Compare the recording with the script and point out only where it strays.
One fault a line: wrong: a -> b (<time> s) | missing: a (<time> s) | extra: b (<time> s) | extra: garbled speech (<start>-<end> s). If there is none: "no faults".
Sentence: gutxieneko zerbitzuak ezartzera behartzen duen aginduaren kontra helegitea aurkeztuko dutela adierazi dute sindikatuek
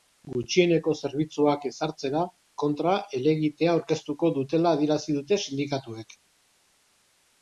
missing: behartzen duen aginduaren (2.2 s)